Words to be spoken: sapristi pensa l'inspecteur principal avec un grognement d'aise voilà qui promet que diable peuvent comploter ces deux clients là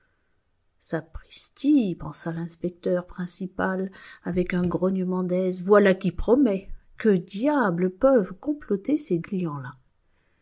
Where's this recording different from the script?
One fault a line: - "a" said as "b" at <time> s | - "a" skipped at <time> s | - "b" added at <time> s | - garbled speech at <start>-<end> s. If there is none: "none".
- "deux" skipped at 9.2 s